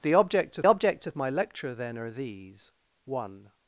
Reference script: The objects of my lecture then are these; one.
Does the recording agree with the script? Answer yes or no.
no